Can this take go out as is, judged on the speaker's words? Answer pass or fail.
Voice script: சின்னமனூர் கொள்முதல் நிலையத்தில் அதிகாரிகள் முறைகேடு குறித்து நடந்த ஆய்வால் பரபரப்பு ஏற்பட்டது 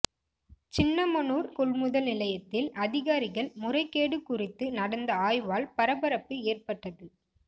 pass